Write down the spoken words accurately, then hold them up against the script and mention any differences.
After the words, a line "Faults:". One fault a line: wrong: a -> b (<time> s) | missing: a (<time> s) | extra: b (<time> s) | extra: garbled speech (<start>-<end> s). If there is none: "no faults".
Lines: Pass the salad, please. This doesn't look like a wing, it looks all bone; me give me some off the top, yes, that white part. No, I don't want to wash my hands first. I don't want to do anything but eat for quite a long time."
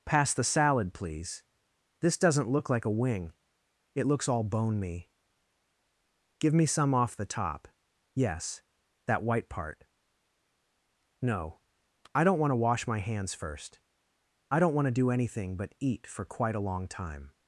Pass the salad, please. This doesn't look like a wing, it looks all bone; me give me some off the top, yes, that white part. No, I don't want to wash my hands first. I don't want to do anything but eat for quite a long time."
Faults:
no faults